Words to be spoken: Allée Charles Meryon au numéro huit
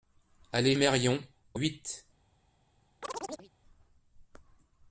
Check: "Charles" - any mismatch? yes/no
yes